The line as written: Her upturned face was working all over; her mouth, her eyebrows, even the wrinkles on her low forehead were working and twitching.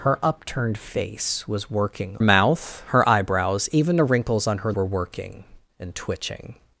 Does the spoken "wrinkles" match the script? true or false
true